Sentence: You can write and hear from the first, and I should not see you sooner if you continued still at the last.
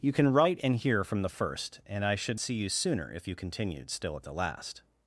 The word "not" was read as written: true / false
false